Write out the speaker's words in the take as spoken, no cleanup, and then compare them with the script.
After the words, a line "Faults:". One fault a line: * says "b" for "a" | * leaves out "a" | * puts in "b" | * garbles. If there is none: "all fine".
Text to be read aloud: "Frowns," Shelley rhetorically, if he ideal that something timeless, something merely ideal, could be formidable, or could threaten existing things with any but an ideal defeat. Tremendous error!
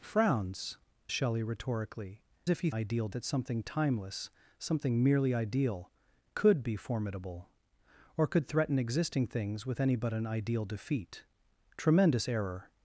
"Frowns," Shelley rhetorically, if he ideal that something timeless, something merely ideal, could be formidable, or could threaten existing things with any but an ideal defeat. Tremendous error!
Faults:
all fine